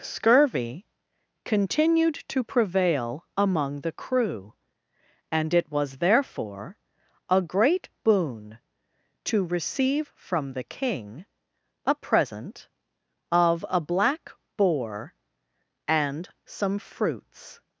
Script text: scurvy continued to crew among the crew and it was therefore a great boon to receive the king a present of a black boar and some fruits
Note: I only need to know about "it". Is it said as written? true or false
true